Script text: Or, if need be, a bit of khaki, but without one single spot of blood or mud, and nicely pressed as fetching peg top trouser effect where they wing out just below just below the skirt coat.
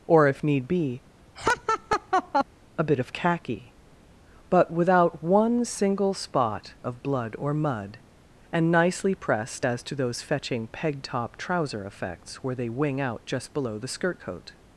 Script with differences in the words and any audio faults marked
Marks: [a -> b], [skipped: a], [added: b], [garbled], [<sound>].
Or, if need be, [laugh] a bit of khaki, but without one single spot of blood or mud, and nicely pressed as [added: to those] fetching peg top trouser [effect -> effects] where they wing out just below [skipped: just below] the skirt coat.